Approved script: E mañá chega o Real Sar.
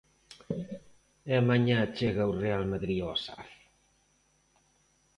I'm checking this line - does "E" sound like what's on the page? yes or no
yes